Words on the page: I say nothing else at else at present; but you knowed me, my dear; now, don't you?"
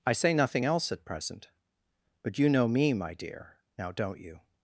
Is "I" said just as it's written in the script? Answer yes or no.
yes